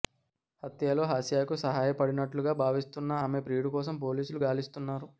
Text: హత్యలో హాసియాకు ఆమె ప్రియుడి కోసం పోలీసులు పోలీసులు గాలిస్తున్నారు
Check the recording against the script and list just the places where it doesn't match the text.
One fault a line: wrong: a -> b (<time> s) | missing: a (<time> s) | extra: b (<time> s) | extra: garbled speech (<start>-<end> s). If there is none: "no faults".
extra: సాయపడినట్లుగా భావిస్తున్న (1.6 s)
missing: పోలీసులు (4.4 s)